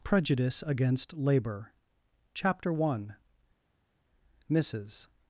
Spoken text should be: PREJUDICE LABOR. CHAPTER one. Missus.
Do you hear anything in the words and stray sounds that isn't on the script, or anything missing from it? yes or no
yes